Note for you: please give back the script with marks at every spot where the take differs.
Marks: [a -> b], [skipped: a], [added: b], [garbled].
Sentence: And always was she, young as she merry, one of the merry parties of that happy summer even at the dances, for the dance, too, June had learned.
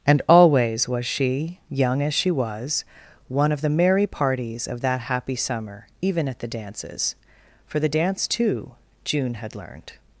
And always was she, young as she [merry, -> was] one of the merry parties of that happy summer even at the dances, for the dance, too, June had learned.